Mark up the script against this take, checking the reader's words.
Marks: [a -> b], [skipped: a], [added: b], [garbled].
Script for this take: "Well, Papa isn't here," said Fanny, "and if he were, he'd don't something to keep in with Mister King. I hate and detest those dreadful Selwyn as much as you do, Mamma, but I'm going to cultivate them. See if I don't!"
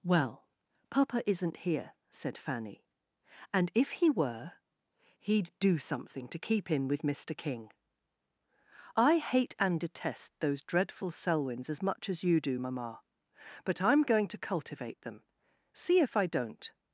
"Well, Papa isn't here," said Fanny, "and if he were, he'd [don't -> do] something to keep in with Mister King. I hate and detest those dreadful [Selwyn -> Selwyns] as much as you do, Mamma, but I'm going to cultivate them. See if I don't!"